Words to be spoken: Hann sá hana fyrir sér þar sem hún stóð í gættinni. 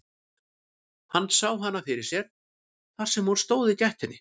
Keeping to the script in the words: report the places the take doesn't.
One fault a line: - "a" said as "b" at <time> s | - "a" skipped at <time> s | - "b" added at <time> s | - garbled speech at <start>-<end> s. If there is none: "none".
none